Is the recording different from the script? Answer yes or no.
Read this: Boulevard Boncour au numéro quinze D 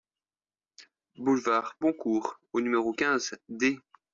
no